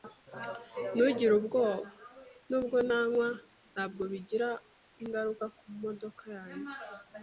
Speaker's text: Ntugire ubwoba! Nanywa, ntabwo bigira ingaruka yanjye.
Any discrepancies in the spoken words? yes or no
yes